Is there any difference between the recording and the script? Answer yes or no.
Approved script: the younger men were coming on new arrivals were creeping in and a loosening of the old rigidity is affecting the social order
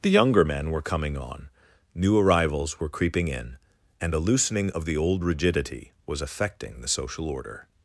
yes